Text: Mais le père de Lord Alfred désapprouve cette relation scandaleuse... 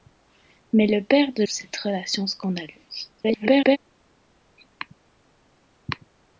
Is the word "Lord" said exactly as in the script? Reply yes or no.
no